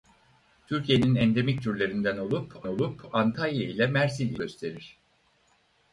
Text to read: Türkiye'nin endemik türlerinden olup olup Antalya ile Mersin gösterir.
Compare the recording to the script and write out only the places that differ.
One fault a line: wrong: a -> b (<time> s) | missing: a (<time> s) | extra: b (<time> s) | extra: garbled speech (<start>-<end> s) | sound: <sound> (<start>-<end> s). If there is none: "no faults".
no faults